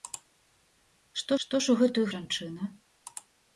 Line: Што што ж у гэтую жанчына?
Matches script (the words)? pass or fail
pass